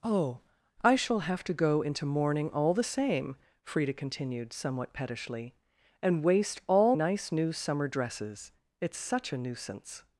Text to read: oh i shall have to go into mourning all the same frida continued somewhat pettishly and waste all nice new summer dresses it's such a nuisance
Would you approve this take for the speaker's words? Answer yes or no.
yes